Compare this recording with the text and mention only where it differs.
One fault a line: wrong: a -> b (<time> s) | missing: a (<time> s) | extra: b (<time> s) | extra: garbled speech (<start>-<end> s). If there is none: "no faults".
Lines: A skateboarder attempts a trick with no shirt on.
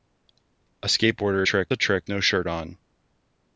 wrong: attempts -> trick (1.4 s)
missing: with (2.1 s)